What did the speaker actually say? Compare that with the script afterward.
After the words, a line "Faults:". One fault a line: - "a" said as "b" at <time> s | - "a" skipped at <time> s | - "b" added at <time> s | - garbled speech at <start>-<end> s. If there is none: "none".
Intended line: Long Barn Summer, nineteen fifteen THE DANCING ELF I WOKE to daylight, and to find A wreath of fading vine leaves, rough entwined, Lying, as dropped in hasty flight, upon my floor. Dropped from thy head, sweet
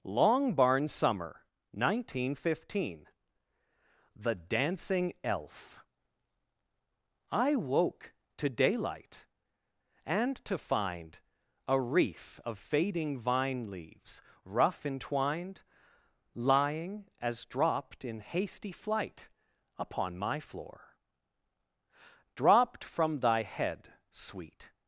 Long Barn Summer, nineteen fifteen THE DANCING ELF I WOKE to daylight, and to find A wreath of fading vine leaves, rough entwined, Lying, as dropped in hasty flight, upon my floor. Dropped from thy head, sweet
Faults:
none